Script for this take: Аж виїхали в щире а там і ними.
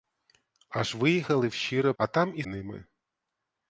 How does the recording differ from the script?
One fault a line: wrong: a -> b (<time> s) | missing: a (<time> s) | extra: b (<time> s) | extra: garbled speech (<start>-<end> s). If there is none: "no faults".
no faults